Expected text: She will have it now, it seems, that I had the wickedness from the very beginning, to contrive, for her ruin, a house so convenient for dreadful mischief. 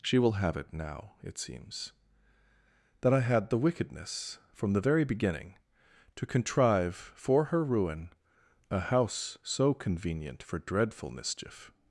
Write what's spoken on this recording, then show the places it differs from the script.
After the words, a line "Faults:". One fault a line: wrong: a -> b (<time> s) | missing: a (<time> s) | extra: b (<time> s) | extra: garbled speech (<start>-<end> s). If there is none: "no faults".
She will have it now, it seems, that I had the wickedness from the very beginning, to contrive, for her ruin, a house so convenient for dreadful mischief.
Faults:
no faults